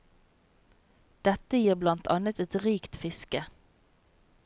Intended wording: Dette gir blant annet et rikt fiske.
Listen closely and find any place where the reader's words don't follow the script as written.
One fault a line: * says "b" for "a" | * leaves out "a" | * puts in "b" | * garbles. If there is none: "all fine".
all fine